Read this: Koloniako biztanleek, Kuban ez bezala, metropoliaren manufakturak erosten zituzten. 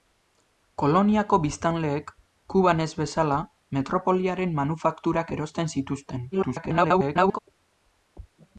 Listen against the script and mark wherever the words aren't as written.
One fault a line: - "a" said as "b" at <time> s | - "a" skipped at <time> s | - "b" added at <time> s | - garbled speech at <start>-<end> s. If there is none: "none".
- garbled speech at 6.3-7.4 s